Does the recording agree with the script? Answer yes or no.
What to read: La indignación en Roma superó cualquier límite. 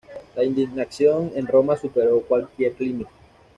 yes